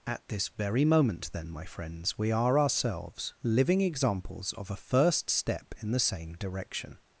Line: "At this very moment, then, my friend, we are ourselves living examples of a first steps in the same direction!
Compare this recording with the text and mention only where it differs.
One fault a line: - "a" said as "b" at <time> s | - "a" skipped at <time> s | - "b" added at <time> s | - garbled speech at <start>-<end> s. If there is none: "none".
- "friend" said as "friends" at 1.6 s
- "steps" said as "step" at 5.3 s